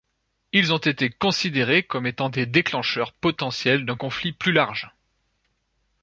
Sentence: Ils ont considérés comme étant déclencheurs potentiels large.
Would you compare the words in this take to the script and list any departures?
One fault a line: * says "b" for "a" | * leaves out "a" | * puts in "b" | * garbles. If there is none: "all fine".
* puts in "été"
* puts in "des"
* puts in "d'un conflit plus"